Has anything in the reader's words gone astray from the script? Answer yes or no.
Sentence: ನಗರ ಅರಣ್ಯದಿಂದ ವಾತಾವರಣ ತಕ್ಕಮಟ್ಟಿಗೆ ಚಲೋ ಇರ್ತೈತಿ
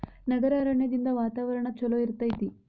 yes